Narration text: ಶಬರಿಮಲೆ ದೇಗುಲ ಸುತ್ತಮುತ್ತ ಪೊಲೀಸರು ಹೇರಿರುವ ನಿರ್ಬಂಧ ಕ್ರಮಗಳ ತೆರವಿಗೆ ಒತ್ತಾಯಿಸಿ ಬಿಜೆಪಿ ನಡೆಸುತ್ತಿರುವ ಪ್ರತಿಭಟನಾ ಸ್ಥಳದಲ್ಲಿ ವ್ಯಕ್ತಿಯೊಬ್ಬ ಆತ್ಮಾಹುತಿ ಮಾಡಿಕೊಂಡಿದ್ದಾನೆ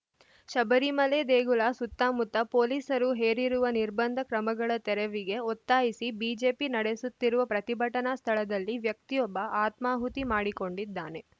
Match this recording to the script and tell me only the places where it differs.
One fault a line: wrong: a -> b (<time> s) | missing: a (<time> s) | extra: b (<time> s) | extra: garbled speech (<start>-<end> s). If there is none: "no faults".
no faults